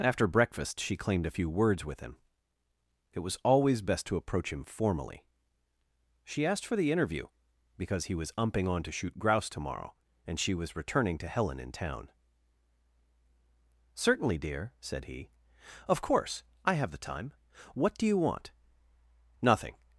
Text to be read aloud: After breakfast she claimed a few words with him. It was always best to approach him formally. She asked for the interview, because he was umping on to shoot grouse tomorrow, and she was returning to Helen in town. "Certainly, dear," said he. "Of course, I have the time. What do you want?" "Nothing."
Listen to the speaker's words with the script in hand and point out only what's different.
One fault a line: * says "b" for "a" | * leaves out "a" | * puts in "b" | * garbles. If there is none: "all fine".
all fine